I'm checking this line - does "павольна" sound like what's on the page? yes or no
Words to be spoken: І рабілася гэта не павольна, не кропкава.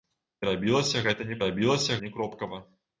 no